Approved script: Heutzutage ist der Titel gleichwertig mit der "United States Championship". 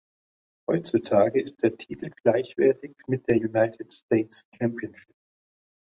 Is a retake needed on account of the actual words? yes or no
no